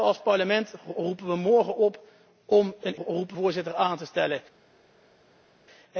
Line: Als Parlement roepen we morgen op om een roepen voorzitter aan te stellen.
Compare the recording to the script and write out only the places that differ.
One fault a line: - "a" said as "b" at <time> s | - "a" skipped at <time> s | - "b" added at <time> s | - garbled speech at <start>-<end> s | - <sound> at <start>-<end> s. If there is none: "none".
none